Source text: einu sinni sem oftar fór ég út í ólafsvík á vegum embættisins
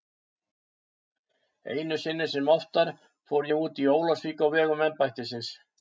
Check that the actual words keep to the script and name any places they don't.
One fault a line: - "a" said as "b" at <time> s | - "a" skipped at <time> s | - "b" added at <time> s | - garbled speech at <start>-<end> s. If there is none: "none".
none